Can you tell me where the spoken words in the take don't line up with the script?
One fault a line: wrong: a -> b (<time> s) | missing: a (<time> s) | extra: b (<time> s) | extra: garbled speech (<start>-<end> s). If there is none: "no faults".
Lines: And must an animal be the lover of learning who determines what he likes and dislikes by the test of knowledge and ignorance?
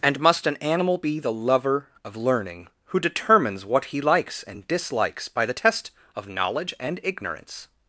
no faults